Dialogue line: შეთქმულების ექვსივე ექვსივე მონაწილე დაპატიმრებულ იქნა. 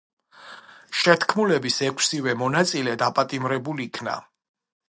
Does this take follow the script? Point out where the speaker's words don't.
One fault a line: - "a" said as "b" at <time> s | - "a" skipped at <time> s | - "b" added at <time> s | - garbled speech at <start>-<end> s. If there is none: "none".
- "ექვსივე" skipped at 2.4 s